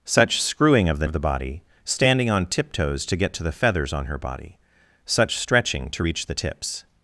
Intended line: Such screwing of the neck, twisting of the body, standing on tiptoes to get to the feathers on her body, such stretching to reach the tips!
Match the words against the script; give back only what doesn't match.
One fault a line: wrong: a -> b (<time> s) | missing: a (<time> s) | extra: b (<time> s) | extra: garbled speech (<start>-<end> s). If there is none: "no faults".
missing: neck twisting (1.1 s)